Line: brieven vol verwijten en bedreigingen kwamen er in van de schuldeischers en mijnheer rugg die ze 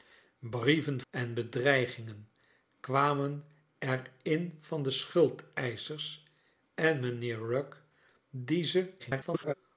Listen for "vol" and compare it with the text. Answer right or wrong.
wrong